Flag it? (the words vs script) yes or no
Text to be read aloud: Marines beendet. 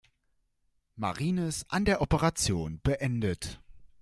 yes